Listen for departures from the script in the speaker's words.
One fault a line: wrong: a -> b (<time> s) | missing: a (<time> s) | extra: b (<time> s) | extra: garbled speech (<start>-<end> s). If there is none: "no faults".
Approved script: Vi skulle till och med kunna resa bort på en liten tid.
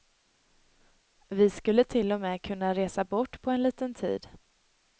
no faults